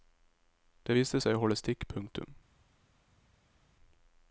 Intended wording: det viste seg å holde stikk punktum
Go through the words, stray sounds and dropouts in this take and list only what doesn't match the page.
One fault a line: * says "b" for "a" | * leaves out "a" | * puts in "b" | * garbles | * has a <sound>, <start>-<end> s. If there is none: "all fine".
all fine